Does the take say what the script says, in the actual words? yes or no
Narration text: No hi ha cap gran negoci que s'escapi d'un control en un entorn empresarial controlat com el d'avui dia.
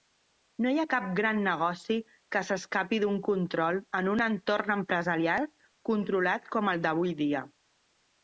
yes